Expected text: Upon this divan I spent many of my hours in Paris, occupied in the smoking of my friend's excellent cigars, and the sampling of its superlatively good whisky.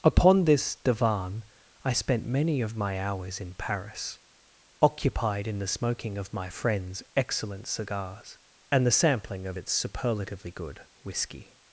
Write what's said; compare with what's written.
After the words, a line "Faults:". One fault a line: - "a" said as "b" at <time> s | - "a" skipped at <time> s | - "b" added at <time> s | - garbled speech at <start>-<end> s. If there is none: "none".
Upon this divan I spent many of my hours in Paris, occupied in the smoking of my friend's excellent cigars, and the sampling of its superlatively good whisky.
Faults:
none